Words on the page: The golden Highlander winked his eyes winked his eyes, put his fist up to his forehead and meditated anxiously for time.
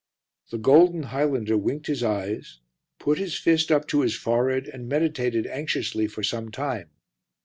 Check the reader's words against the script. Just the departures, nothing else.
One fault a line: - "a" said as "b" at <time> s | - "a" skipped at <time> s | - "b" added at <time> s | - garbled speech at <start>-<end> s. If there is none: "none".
- "winked his eyes" skipped at 2.6 s
- "some" added at 6.2 s